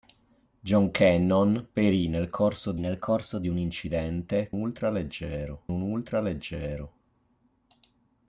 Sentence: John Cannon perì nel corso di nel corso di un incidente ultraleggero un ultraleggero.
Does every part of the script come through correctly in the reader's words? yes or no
yes